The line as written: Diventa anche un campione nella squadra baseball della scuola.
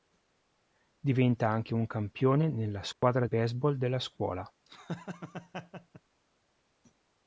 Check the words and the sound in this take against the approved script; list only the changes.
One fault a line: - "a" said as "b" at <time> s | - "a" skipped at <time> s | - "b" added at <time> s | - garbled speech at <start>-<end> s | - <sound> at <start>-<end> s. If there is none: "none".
- dropout at 2.9-3.0 s
- laugh at 4.7-6.0 s